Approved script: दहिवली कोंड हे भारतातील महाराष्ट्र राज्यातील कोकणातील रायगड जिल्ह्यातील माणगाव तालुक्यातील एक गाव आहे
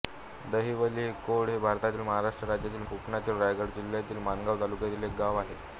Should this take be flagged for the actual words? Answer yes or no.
no